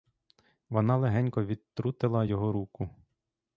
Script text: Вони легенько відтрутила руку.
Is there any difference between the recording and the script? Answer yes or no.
yes